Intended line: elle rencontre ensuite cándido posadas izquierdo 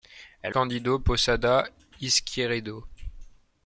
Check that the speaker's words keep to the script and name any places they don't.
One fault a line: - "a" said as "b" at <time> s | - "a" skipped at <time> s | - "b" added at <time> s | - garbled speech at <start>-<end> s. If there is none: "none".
- "rencontre ensuite" skipped at 0.6 s